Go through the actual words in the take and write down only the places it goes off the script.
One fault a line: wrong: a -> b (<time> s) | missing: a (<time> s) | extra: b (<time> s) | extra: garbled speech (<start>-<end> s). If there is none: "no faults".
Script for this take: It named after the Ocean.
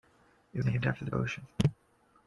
no faults